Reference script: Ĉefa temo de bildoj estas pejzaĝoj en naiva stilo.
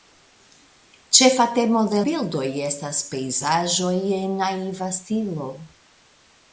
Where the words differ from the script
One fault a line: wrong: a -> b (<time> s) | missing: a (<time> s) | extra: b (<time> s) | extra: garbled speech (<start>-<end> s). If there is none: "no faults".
no faults